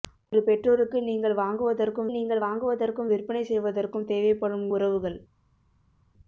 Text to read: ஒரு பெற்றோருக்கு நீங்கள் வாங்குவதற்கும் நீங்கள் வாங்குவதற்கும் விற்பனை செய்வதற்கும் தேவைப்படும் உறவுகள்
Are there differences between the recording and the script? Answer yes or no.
no